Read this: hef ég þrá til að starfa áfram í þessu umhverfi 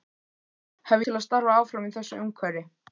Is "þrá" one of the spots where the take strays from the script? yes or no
yes